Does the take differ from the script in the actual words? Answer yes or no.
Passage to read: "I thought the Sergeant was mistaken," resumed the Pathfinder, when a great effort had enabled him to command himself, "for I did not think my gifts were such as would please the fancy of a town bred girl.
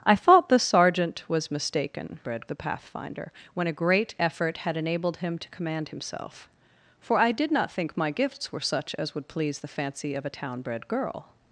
yes